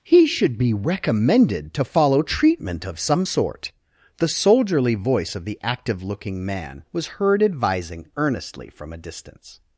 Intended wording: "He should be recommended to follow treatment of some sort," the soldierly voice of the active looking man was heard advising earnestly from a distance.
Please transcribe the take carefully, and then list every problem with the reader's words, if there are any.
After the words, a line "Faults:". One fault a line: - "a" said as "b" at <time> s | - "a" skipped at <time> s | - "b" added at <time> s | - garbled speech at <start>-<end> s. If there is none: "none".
"He should be recommended to follow treatment of some sort," the soldierly voice of the active looking man was heard advising earnestly from a distance.
Faults:
none